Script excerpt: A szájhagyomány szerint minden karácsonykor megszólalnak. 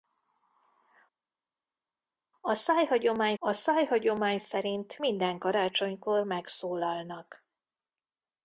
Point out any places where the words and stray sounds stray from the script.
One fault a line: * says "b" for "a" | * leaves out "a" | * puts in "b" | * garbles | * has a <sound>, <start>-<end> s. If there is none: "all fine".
* puts in "a szájhagyomány"